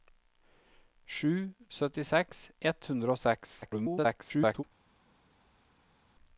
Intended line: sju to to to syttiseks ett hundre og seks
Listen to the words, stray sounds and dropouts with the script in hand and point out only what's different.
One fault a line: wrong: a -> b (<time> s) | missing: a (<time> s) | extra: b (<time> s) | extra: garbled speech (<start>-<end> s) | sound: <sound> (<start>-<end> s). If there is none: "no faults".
missing: to to to (1.3 s)
extra: garbled speech (3.6-4.6 s)